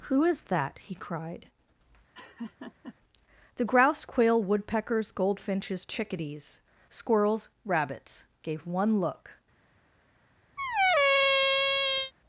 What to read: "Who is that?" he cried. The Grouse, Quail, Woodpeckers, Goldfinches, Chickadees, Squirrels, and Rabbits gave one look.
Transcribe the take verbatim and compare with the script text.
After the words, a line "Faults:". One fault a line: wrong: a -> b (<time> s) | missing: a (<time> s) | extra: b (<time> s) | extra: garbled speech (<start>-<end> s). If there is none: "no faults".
"Who is that?" he cried. The Grouse, Quail, Woodpeckers, Goldfinches, Chickadees, Squirrels, Rabbits gave one look.
Faults:
missing: and (7.5 s)